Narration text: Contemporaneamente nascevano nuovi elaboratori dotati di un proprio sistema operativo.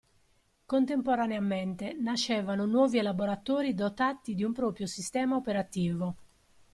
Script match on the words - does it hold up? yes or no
yes